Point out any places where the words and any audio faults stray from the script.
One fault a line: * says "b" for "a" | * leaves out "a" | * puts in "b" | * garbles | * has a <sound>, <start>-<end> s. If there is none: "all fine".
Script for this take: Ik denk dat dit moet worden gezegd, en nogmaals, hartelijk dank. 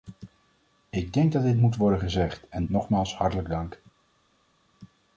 all fine